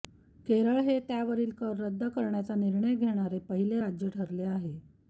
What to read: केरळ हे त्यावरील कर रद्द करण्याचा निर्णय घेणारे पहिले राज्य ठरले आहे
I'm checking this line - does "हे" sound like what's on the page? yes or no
yes